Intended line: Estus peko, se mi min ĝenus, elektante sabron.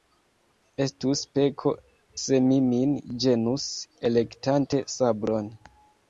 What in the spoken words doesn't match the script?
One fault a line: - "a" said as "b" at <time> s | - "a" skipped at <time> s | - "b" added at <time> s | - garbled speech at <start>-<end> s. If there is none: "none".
none